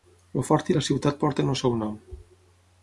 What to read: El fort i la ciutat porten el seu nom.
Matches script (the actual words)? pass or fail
pass